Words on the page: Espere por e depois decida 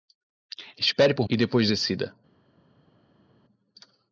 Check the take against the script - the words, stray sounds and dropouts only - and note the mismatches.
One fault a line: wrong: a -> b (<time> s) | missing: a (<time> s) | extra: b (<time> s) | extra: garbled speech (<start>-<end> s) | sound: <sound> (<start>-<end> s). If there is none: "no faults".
no faults